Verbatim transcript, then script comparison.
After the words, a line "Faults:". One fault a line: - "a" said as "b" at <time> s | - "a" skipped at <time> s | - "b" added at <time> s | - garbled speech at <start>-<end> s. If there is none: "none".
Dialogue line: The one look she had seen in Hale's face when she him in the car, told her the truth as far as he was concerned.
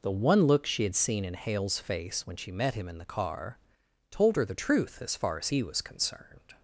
The one look she had seen in Hale's face when she met him in the car, told her the truth as far as he was concerned.
Faults:
- "met" added at 2.5 s